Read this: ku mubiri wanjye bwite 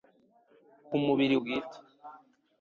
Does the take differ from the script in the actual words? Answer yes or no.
yes